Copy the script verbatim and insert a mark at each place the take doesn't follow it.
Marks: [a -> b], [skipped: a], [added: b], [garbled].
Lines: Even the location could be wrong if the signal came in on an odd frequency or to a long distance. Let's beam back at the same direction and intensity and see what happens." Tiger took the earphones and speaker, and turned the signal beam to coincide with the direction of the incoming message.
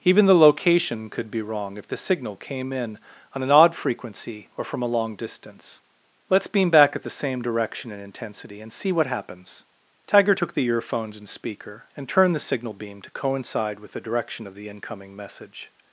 Even the location could be wrong if the signal came in on an odd frequency or [to -> from] a long distance. Let's beam back at the same direction and intensity and see what happens." Tiger took the earphones and speaker, and turned the signal beam to coincide with the direction of the incoming message.